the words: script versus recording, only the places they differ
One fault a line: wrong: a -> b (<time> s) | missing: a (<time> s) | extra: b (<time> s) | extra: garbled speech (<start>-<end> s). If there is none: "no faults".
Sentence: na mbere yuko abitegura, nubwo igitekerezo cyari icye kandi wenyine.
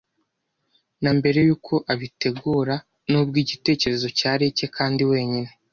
no faults